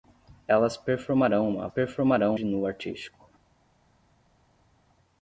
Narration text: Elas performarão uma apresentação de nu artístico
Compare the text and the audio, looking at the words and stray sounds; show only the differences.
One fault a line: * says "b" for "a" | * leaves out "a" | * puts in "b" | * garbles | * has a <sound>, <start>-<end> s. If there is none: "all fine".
* says "performarão" for "apresentação"